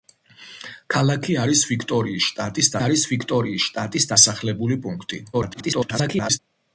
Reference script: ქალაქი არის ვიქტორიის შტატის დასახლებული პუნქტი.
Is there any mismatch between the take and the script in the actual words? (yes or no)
yes